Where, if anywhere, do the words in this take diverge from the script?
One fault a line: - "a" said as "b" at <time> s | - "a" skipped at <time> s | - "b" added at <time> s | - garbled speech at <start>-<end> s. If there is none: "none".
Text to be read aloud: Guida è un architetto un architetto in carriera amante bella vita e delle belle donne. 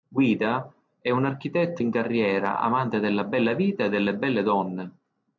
- "un architetto" skipped at 1.8 s
- "della" added at 3.0 s